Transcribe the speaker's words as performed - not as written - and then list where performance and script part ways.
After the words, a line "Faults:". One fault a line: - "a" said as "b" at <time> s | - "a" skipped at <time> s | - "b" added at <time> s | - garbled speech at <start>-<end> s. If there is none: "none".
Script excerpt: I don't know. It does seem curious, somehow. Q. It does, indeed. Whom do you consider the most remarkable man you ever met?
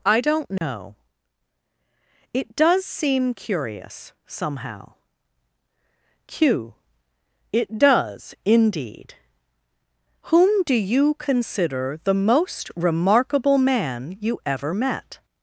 I don't know. It does seem curious, somehow. Q. It does, indeed. Whom do you consider the most remarkable man you ever met?
Faults:
none